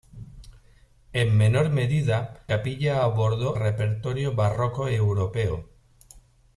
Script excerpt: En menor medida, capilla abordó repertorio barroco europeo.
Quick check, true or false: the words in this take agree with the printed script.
true